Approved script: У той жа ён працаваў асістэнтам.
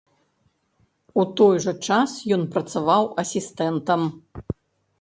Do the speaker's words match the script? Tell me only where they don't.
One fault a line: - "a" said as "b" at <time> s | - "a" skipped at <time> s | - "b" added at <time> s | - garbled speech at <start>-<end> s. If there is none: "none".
- "час" added at 1.9 s